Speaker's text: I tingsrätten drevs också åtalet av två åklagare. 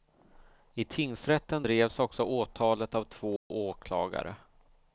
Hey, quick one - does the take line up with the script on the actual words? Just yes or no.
yes